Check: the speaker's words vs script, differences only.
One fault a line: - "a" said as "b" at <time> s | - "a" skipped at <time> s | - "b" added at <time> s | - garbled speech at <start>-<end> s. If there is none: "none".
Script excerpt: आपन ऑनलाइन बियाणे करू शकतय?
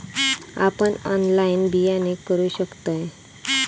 none